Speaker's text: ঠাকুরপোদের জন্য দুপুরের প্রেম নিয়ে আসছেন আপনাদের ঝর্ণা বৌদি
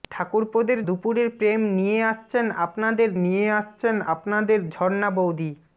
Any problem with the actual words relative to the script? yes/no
yes